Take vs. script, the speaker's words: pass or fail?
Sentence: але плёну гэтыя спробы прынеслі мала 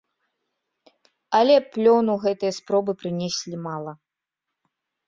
pass